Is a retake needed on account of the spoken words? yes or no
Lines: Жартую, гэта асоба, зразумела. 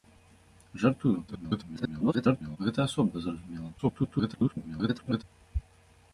yes